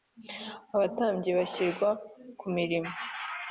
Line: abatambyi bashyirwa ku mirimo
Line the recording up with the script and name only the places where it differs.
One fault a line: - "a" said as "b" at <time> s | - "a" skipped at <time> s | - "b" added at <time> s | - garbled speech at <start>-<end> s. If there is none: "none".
none